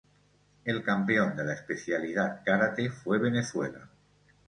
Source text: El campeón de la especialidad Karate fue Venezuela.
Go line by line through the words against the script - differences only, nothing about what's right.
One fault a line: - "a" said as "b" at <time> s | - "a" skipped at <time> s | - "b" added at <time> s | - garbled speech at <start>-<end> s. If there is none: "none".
none